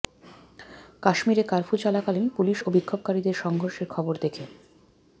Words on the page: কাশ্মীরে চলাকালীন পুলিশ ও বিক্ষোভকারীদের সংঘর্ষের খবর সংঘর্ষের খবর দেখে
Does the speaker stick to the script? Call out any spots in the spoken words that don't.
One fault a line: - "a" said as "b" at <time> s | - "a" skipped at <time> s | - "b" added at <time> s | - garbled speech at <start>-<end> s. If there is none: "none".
- "কার্ফু" added at 1.4 s
- "সংঘর্ষের খবর" skipped at 4.1 s